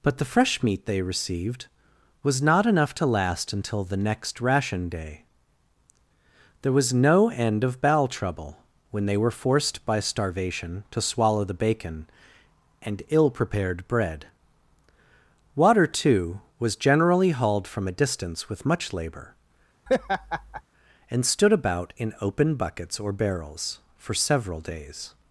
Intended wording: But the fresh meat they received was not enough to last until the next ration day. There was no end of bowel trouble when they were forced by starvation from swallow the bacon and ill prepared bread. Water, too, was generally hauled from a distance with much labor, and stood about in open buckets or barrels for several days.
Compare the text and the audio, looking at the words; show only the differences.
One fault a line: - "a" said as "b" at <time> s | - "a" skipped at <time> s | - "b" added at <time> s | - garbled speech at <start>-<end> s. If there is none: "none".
- "from" said as "to" at 10.9 s